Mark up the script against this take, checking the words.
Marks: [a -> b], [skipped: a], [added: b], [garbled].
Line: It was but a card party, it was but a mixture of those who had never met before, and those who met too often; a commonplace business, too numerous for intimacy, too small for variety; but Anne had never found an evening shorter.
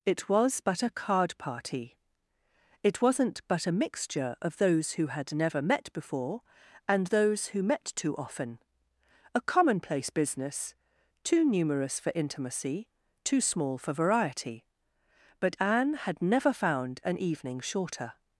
It was but a card party, it [was -> wasn't] but a mixture of those who had never met before, and those who met too often; a commonplace business, too numerous for intimacy, too small for variety; but Anne had never found an evening shorter.